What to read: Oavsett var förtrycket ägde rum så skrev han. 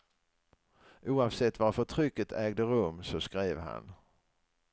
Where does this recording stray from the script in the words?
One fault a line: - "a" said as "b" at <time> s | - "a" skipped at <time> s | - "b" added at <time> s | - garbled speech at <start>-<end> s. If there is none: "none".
none